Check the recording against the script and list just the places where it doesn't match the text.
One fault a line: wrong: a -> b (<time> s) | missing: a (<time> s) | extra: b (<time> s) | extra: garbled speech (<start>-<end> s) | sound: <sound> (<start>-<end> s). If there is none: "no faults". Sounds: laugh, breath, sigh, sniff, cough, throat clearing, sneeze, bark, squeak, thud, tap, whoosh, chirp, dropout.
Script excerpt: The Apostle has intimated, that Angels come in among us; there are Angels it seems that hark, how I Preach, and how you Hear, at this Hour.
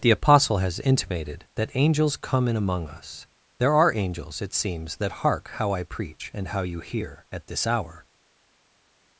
no faults